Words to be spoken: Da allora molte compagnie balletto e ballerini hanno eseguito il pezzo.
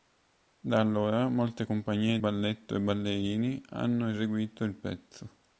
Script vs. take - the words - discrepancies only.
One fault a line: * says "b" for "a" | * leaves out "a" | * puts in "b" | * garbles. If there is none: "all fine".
all fine